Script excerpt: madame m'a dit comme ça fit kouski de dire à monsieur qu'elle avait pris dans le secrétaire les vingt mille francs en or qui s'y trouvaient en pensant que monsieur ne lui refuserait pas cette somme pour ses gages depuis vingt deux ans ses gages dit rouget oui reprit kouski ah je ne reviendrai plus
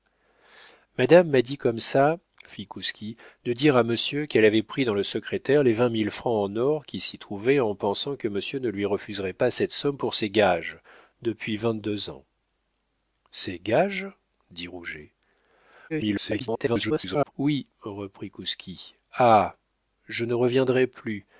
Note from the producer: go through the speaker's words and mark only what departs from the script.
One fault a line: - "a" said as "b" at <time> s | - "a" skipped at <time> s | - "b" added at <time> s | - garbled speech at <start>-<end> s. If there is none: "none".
- garbled speech at 15.9-17.3 s